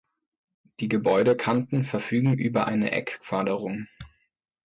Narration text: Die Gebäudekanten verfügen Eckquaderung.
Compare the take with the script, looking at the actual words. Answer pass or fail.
fail